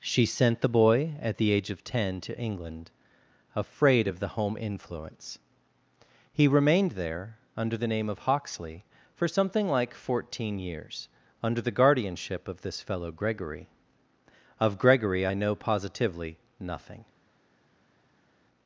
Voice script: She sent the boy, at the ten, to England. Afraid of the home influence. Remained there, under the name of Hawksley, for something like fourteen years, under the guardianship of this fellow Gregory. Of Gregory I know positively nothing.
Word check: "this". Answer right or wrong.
right